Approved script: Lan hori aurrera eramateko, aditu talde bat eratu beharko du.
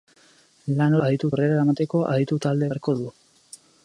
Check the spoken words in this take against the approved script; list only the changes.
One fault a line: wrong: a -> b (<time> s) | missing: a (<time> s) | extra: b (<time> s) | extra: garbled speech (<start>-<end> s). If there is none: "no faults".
wrong: hori -> aditu (1.1 s)
missing: bat eratu (2.7 s)